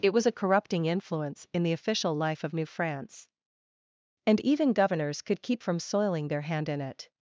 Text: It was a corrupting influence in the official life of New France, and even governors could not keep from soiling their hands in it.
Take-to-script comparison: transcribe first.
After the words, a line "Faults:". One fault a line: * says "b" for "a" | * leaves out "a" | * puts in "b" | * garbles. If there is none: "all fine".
It was a corrupting influence in the official life of New France, and even governors could keep from soiling their hand in it.
Faults:
* leaves out "not"
* says "hand" for "hands"